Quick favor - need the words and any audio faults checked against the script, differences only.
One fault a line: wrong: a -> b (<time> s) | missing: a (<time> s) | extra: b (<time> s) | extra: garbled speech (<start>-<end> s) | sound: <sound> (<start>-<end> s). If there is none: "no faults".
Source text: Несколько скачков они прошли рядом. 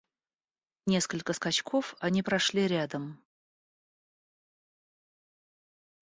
no faults